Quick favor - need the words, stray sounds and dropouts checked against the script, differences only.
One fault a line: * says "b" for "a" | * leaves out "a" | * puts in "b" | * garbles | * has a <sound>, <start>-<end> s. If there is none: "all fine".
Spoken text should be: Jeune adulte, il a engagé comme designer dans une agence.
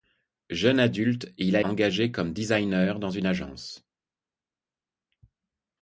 all fine